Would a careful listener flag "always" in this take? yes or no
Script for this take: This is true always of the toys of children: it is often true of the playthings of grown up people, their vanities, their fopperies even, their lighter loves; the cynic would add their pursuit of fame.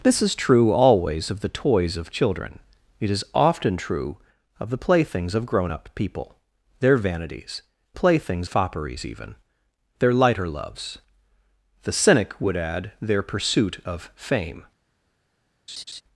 no